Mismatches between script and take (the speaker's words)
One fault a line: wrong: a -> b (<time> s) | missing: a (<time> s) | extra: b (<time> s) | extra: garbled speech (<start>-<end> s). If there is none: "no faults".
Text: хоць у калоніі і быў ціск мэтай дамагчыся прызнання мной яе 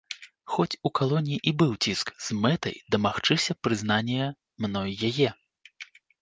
extra: з (2.3 s)